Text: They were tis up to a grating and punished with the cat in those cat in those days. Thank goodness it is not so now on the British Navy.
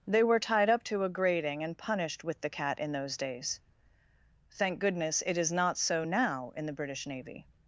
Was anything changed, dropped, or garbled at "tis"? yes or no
yes